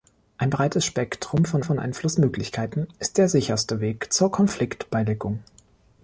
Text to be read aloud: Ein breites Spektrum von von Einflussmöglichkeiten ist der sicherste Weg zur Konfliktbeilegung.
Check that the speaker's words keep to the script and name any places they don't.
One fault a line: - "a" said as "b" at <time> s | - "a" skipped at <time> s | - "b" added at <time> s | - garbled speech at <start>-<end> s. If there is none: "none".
none